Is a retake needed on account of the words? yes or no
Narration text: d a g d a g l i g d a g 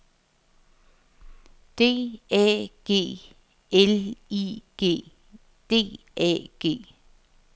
yes